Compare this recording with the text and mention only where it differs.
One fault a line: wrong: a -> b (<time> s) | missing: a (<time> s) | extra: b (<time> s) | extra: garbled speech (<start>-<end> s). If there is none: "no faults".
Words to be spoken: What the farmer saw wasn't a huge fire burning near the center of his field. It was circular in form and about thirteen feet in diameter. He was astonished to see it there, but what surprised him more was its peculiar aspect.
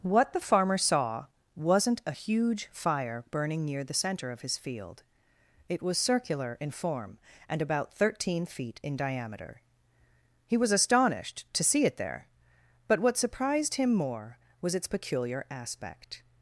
no faults